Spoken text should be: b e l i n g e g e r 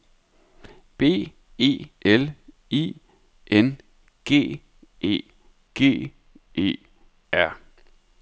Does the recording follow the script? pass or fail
pass